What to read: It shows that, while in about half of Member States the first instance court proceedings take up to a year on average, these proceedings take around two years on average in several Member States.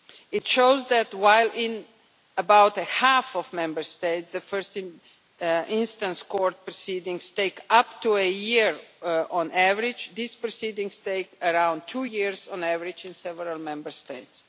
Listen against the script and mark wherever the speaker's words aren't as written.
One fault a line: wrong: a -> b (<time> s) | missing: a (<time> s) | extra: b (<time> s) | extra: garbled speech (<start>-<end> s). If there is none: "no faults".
no faults